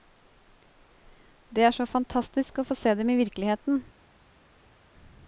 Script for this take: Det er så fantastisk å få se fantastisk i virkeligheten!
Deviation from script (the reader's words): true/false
true